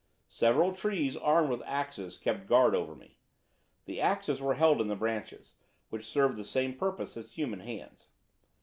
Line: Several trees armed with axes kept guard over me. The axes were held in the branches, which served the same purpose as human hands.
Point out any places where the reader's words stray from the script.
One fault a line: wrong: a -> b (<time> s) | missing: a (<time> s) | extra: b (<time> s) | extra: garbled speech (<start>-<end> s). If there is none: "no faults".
no faults